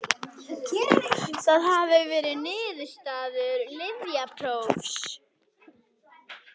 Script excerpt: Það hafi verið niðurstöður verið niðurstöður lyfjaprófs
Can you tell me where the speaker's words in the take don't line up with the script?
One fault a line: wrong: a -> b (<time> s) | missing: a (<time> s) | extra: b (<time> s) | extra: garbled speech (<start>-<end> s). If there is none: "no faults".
missing: verið niðurstöður (3.6 s)